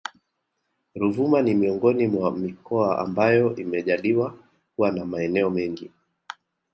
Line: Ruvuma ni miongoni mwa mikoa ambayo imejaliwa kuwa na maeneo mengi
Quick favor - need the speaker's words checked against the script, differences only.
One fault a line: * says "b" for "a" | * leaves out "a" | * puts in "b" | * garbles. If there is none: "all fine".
all fine